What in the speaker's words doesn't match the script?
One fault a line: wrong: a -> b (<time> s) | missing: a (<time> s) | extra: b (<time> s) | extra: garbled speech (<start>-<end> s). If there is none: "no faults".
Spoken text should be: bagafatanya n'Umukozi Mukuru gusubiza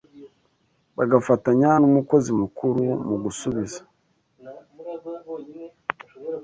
extra: mu (3.1 s)